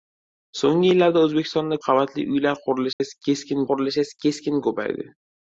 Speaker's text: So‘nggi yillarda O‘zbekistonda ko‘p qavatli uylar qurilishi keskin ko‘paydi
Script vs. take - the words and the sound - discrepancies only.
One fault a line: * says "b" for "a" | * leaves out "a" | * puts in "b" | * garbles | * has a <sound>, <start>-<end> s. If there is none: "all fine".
* leaves out "ko‘p"
* has a dropout, 2.9-3.0 s
* puts in "qurilishi keskin"